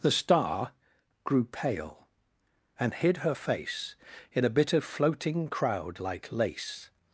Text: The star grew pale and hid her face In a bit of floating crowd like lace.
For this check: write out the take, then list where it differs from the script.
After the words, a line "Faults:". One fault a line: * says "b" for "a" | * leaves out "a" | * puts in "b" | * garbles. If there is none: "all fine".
The star grew pale and hid her face In a bit of floating crowd like lace.
Faults:
all fine